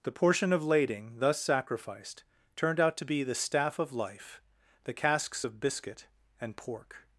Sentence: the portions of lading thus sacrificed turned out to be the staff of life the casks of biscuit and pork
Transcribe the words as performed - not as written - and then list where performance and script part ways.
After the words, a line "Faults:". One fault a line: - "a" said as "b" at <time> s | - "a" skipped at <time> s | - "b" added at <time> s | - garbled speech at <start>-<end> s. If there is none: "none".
the portion of lading thus sacrificed turned out to be the staff of life the casks of biscuit and pork
Faults:
- "portions" said as "portion" at 0.1 s